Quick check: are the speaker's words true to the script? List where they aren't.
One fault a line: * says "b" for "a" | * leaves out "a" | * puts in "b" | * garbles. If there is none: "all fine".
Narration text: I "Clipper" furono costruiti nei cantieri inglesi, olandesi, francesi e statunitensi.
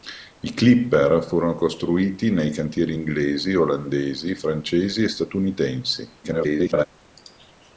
* garbles